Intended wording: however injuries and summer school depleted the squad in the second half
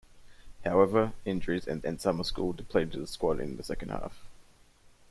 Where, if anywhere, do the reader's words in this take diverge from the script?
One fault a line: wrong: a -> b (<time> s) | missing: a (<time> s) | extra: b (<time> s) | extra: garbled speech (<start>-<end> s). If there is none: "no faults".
extra: and (1.8 s)